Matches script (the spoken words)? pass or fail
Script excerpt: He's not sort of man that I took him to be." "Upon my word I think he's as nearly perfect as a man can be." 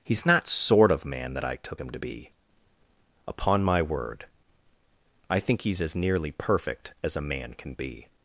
pass